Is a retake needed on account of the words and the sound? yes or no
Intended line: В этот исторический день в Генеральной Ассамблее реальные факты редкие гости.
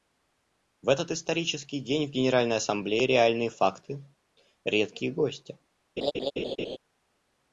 yes